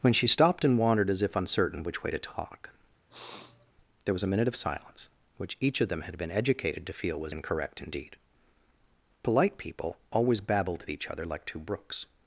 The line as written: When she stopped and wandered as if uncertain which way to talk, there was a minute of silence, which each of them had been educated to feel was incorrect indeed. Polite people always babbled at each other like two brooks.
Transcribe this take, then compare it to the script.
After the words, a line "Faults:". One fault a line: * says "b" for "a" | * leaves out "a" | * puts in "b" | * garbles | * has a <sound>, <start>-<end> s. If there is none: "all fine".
When she stopped and wandered as if uncertain which way to talk, there was a minute of silence, which each of them had been educated to feel was incorrect indeed. Polite people always babbled at each other like two brooks.
Faults:
* has a sniff, 3.1-3.7 s